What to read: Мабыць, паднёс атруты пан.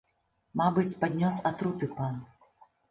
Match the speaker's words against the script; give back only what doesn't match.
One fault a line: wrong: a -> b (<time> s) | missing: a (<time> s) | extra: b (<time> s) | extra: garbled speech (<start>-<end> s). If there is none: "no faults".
no faults